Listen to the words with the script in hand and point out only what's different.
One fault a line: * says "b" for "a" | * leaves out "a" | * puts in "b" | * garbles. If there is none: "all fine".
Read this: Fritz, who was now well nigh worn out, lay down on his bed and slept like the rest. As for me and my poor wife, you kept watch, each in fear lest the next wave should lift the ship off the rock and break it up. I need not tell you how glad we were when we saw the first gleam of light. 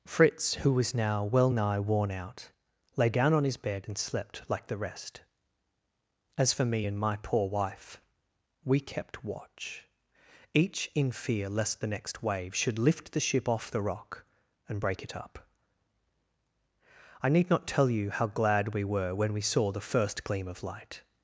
* says "we" for "you"